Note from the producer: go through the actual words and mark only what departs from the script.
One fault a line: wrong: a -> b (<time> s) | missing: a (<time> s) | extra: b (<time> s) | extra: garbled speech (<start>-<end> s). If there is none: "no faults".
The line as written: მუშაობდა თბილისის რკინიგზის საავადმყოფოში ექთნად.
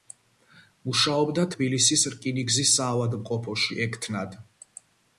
no faults